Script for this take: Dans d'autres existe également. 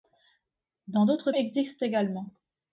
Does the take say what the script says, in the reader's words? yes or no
yes